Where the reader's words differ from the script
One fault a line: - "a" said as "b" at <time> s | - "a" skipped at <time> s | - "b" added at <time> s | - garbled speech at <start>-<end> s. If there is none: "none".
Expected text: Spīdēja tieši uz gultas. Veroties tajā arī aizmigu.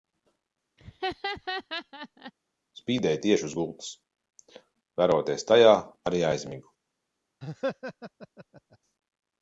none